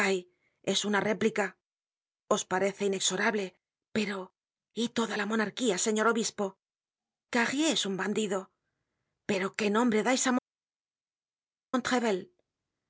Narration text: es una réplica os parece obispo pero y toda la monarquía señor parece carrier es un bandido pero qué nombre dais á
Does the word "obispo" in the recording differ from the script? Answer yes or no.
yes